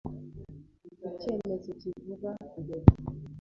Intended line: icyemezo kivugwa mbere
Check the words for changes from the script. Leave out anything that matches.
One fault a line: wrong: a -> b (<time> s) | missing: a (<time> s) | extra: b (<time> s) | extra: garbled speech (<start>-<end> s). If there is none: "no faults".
no faults